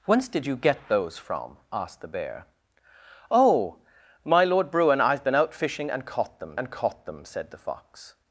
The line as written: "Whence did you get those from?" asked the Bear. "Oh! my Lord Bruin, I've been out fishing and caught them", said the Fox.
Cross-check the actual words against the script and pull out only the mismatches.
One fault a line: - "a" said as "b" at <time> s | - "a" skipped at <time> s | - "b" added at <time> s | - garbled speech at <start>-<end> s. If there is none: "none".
- "and caught them" added at 6.6 s